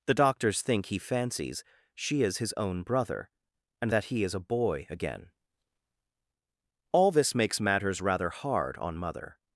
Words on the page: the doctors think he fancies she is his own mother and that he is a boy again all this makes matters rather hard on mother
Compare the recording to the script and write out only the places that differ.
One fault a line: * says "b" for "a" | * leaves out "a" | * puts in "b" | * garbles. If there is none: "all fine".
* says "brother" for "mother"